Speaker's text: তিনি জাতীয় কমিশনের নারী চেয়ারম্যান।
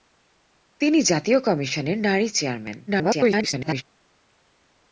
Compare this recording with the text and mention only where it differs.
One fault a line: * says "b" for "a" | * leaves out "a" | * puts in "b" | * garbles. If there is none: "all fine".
* garbles